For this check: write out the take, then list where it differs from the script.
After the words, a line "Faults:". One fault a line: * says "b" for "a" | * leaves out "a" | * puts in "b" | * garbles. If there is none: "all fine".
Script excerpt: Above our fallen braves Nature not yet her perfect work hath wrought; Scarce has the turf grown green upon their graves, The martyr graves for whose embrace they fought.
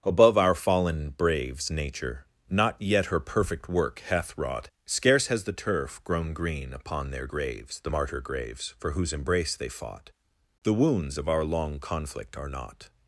Above our fallen braves Nature not yet her perfect work hath wrought; Scarce has the turf grown green upon their graves, The martyr graves for whose embrace they fought. The wounds of our long conflict are not
Faults:
* puts in "The wounds of our long conflict are not"